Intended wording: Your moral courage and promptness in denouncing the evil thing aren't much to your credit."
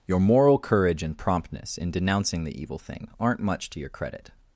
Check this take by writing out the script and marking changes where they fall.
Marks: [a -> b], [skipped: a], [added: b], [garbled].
Your moral courage and promptness in denouncing the evil thing aren't much to your credit."